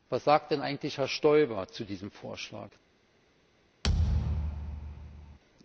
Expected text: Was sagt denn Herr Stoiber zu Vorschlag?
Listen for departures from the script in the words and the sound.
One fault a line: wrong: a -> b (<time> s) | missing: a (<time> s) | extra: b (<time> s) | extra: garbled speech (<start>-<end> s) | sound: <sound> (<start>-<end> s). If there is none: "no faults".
extra: eigentlich (0.6 s)
extra: diesem (1.8 s)
sound: thud (3.8-5.4 s)